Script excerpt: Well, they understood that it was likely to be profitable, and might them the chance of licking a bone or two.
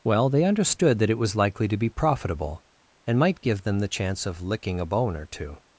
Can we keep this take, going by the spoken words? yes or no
no